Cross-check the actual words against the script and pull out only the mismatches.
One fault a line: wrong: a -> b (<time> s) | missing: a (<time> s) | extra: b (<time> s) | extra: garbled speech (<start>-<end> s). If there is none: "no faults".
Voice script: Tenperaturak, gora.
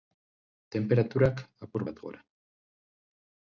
extra: apur bat (1.7 s)